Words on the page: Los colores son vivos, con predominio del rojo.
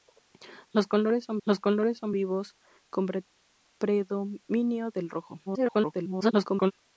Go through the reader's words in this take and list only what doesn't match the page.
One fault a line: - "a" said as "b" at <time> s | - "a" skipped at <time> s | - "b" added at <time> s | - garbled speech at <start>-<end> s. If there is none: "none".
- "los colores son" added at 1.4 s
- garbled speech at 5.5-6.7 s